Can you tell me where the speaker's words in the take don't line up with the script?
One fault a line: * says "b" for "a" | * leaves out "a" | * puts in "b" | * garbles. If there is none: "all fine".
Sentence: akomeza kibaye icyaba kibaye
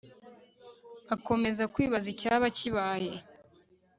* says "kwibaza" for "kibaye"